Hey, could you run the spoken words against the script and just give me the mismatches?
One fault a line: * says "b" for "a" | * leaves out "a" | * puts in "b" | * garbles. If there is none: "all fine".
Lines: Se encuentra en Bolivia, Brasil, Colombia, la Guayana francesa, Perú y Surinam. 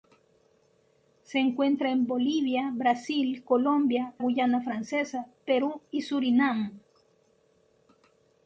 * leaves out "la"